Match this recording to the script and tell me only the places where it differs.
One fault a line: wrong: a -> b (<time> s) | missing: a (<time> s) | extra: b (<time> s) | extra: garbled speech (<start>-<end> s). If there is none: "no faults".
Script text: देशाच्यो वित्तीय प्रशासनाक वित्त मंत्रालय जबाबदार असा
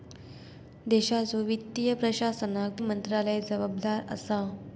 missing: वित्त (2.8 s)